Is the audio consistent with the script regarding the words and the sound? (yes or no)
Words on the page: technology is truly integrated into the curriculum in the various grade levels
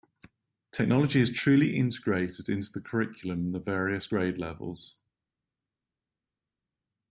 yes